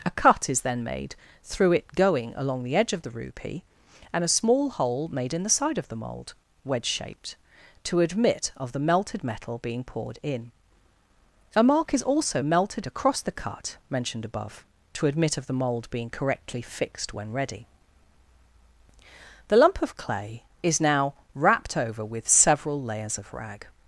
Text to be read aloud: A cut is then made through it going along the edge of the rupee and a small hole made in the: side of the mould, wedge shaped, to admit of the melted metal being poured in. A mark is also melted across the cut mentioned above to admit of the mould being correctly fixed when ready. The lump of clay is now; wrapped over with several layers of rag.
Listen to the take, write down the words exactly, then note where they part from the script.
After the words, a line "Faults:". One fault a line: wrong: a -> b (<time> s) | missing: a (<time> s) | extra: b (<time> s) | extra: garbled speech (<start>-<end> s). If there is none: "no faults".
A cut is then made through it going along the edge of the rupee and a small hole made in the: side of the mould, wedge shaped, to admit of the melted metal being poured in. A mark is also melted across the cut mentioned above to admit of the mould being correctly fixed when ready. The lump of clay is now; wrapped over with several layers of rag.
Faults:
no faults